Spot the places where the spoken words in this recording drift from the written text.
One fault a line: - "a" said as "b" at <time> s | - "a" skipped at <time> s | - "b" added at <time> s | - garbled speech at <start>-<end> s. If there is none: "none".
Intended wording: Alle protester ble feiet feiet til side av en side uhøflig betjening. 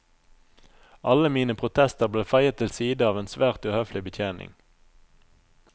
- "mine" added at 1.4 s
- "feiet" skipped at 2.6 s
- "side" said as "svært" at 3.4 s